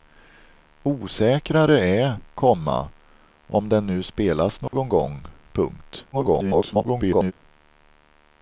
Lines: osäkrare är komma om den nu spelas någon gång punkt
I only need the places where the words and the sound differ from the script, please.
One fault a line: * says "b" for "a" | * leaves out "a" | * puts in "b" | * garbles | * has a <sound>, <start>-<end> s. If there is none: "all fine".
* has a dropout, 4.7-4.7 s
* garbles